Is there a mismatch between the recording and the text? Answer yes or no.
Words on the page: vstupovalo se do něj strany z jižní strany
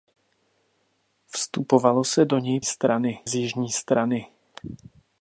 no